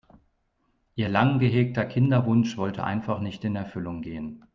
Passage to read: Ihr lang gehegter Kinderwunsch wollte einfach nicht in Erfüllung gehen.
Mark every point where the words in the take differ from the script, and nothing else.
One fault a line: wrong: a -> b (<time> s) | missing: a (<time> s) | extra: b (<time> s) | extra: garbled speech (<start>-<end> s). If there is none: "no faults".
no faults